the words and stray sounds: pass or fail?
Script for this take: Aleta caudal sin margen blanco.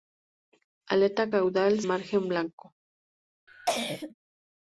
fail